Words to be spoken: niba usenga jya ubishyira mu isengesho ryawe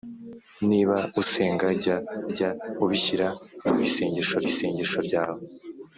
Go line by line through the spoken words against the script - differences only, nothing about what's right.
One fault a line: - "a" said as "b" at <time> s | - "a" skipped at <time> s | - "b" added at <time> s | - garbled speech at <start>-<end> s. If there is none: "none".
- "jya" added at 2.3 s
- "isengesho" added at 4.5 s